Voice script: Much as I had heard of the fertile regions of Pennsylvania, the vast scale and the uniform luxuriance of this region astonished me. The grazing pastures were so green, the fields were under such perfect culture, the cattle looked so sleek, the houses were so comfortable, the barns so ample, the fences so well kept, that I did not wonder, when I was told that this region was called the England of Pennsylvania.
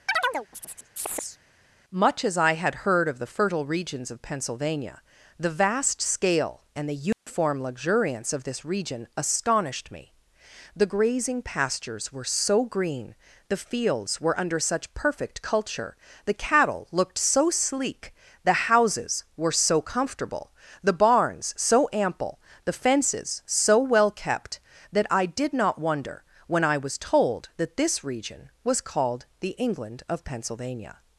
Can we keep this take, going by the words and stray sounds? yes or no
no